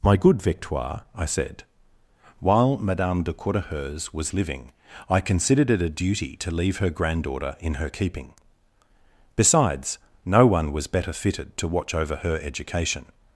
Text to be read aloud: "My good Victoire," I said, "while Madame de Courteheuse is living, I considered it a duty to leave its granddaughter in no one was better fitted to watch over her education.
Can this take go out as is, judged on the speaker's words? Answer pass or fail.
fail